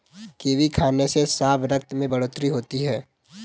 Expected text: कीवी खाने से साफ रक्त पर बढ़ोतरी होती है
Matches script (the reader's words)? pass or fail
fail